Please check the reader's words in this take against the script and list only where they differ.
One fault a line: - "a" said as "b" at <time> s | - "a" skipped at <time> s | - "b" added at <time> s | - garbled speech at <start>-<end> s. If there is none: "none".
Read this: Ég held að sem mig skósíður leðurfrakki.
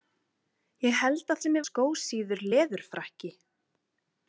none